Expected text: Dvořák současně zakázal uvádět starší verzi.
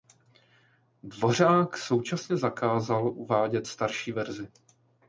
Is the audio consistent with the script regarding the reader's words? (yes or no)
yes